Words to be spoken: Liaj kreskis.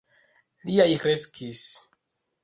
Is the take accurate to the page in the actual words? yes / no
yes